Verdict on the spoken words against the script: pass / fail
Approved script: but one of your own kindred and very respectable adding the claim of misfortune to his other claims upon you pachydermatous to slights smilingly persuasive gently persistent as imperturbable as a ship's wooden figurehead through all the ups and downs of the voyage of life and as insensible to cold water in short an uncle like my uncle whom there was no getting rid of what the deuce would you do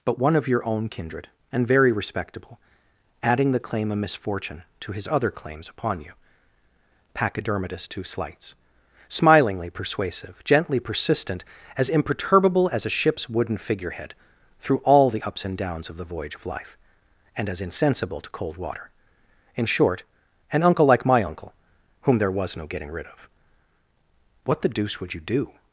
pass